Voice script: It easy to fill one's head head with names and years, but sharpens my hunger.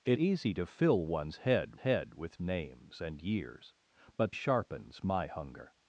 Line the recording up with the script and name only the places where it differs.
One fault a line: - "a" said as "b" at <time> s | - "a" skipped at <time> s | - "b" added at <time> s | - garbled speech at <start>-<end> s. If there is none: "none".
none